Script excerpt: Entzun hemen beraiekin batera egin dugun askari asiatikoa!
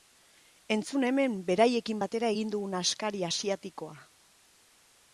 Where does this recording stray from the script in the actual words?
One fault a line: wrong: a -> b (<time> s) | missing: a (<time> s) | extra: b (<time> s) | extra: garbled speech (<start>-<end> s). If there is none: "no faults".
no faults